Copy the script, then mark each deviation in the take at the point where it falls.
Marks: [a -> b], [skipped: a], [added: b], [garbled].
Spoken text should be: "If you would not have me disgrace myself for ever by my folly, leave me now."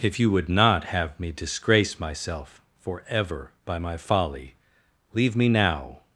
"If you would not have me disgrace myself for ever by my folly, leave me now."